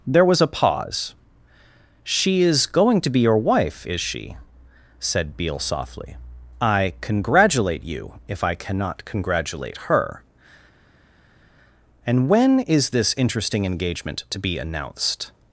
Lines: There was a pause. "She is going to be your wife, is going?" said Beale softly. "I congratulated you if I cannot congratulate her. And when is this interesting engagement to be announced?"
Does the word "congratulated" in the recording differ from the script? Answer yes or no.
yes